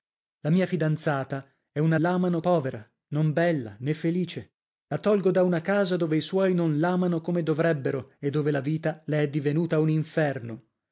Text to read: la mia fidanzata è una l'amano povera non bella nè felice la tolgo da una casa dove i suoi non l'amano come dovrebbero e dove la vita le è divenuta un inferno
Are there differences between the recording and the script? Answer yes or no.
no